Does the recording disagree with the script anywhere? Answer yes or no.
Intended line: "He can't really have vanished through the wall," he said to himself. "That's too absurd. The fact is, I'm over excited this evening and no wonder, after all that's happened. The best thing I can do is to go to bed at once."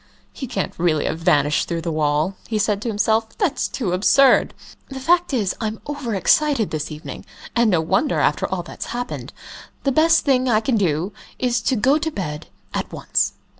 no